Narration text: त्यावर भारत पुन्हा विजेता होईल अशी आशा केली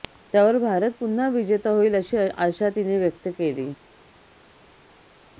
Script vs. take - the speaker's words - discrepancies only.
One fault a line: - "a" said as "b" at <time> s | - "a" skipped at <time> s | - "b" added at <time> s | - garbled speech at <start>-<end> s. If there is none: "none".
- "तिने व्यक्त" added at 2.7 s